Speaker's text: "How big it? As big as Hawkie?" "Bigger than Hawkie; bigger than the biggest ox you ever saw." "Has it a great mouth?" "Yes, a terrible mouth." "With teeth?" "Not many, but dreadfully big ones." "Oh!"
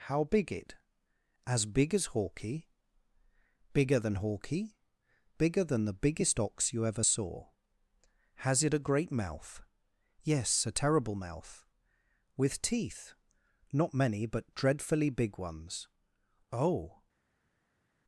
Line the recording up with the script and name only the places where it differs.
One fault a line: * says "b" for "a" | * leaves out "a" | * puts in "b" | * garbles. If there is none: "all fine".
all fine